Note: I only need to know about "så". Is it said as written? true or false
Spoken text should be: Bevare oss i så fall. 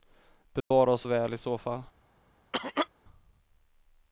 true